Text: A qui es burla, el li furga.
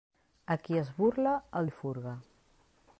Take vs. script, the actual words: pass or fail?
pass